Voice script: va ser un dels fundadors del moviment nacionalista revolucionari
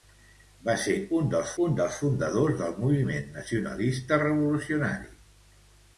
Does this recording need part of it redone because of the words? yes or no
yes